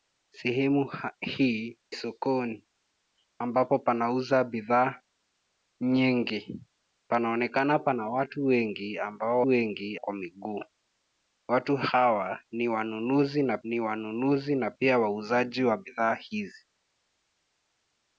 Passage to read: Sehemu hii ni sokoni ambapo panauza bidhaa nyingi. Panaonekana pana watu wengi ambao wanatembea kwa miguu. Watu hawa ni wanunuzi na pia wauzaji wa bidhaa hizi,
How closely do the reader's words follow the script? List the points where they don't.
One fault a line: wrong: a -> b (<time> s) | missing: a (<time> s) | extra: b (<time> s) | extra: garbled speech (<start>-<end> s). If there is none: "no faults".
missing: ni (1.8 s)
wrong: wanatembea -> wengi (9.5 s)
extra: ni wanunuzi na (13.6 s)